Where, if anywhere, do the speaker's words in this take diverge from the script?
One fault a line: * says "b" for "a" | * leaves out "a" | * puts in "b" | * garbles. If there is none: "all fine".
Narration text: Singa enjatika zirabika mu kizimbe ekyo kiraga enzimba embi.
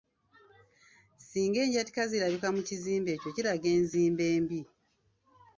all fine